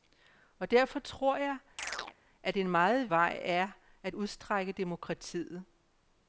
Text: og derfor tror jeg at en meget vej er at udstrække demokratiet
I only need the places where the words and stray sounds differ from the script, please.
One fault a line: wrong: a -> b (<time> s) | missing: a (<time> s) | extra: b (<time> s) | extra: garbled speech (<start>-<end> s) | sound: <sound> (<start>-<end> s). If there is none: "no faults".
sound: chirp (1.8-2.2 s)